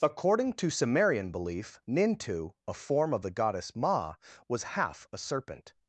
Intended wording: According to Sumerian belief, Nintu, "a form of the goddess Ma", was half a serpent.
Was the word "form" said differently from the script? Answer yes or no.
no